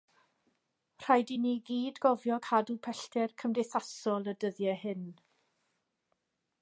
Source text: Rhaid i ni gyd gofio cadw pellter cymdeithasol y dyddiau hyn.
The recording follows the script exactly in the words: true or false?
true